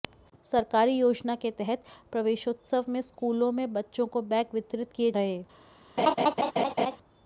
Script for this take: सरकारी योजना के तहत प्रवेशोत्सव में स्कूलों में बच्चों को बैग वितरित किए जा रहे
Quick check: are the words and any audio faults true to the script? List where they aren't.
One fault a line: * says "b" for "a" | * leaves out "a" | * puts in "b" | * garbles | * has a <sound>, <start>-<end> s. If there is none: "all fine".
* leaves out "जा"
* has a laugh, 6.0-7.0 s